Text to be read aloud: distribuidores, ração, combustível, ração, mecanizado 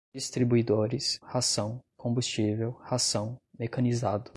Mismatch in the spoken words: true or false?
false